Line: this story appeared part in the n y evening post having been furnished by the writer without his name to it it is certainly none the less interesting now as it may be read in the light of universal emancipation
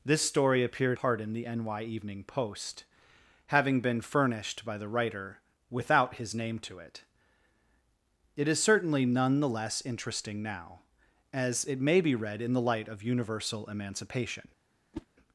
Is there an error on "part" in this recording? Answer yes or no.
no